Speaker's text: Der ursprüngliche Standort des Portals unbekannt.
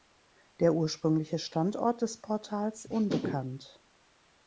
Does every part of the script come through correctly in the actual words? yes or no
yes